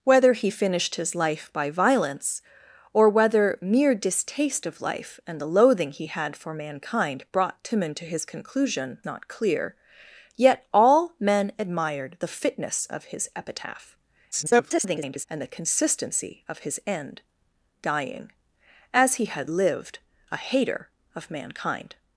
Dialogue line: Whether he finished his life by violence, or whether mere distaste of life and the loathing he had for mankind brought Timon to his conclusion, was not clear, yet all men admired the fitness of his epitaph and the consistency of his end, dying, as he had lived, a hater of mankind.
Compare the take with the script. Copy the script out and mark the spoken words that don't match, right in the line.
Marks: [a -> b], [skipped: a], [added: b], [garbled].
Whether he finished his life by violence, or whether mere distaste of life and the loathing he had for mankind brought Timon to his conclusion, [skipped: was] not clear, yet all men admired the fitness of his epitaph [garbled] and the consistency of his end, dying, as he had lived, a hater of mankind.